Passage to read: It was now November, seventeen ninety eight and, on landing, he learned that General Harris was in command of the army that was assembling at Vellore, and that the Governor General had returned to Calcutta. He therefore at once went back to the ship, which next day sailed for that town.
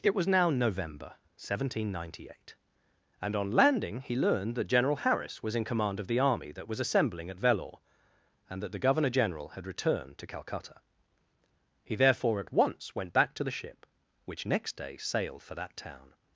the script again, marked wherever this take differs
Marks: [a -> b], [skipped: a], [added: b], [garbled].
It was now November, seventeen ninety eight and, on landing, he learned that General Harris was in command of the army that was assembling at Vellore, and that the Governor General had returned to Calcutta. He therefore at once went back to the ship, which next day sailed for that town.